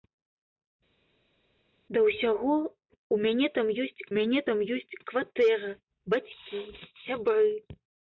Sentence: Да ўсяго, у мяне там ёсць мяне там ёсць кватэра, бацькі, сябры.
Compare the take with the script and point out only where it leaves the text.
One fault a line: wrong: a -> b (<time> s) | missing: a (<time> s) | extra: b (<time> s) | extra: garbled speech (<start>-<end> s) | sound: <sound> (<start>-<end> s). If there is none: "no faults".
no faults